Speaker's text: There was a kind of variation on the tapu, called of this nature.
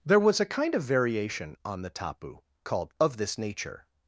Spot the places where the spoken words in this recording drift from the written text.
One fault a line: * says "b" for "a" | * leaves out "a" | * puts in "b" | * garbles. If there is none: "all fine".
all fine